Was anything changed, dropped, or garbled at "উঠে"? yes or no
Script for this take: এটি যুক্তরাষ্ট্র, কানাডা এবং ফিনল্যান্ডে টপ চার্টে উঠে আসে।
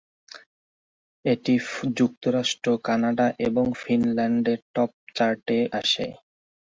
yes